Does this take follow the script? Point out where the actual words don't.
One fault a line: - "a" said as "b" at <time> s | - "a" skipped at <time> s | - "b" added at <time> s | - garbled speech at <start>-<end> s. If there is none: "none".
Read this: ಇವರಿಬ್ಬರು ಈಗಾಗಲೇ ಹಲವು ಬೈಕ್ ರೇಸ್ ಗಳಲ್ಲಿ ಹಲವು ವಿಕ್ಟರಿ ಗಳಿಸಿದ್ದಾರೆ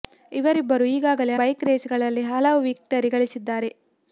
- "ಹಲವು" skipped at 1.4 s